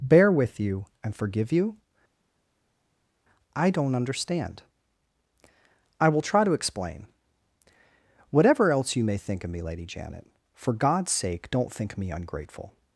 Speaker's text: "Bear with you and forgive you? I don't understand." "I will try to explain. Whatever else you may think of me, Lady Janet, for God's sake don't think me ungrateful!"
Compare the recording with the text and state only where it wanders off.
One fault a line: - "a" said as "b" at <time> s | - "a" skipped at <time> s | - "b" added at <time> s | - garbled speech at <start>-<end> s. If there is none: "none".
none